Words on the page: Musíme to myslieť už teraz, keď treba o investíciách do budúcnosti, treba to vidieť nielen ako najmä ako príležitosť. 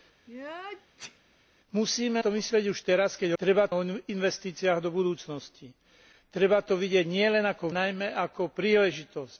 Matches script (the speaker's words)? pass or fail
pass